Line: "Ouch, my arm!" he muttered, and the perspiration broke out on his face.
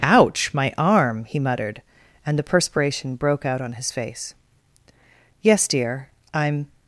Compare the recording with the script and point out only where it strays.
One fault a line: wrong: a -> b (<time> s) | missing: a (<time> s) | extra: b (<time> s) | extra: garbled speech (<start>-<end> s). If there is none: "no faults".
extra: Yes dear I'm (5.4 s)